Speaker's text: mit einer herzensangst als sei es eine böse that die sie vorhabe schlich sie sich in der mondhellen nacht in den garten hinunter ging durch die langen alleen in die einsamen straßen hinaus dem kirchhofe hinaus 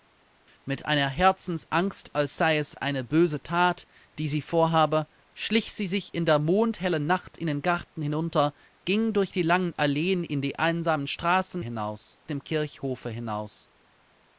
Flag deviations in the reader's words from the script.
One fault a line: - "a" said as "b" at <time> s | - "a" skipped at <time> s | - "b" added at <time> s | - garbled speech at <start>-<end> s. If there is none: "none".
none